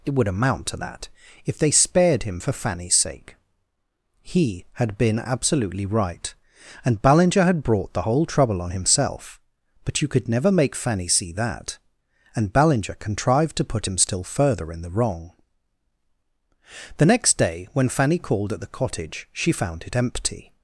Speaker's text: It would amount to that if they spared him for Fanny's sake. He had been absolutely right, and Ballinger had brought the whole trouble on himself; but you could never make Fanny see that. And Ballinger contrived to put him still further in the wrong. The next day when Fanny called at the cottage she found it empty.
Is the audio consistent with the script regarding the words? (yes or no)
yes